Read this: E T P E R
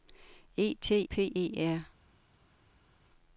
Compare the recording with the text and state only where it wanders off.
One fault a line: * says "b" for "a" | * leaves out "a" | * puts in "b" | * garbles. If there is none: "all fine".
all fine